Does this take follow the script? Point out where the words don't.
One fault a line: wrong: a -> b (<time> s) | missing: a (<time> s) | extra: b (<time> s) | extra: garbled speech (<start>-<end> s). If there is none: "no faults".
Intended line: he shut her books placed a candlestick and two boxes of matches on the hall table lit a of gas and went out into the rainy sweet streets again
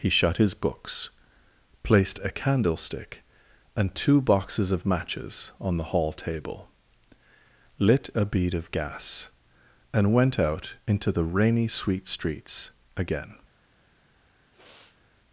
wrong: her -> his (0.4 s)
extra: bead (8.2 s)